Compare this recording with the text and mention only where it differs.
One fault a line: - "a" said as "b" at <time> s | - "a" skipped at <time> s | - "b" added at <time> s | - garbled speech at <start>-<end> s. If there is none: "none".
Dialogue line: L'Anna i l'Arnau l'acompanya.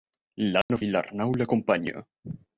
none